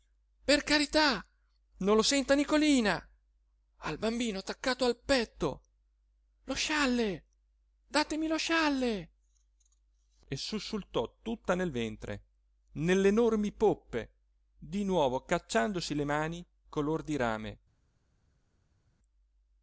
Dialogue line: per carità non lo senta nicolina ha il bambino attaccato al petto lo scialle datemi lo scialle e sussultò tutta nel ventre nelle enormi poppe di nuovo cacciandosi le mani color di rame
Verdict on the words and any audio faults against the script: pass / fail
pass